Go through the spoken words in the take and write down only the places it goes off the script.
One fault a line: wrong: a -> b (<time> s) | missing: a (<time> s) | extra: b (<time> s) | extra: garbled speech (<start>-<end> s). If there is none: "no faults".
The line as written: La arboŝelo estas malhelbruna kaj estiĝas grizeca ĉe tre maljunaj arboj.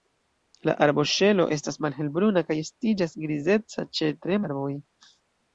missing: maljunaj (4.4 s)